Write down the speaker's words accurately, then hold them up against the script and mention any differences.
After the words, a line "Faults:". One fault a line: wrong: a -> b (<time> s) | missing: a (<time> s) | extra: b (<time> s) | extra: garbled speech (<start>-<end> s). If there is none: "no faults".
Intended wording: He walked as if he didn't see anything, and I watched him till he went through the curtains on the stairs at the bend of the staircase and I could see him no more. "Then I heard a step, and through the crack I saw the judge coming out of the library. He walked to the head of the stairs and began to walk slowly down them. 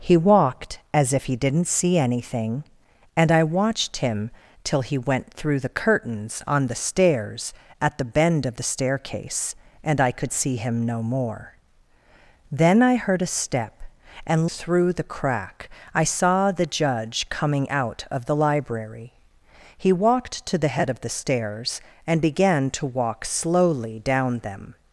He walked as if he didn't see anything, and I watched him till he went through the curtains on the stairs at the bend of the staircase and I could see him no more. "Then I heard a step, and through the crack I saw the judge coming out of the library. He walked to the head of the stairs and began to walk slowly down them.
Faults:
no faults